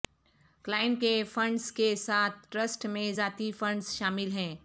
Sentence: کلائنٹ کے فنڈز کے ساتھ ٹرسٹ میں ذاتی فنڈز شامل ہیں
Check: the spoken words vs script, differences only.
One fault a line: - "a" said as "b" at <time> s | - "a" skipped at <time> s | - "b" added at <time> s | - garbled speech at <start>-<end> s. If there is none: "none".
none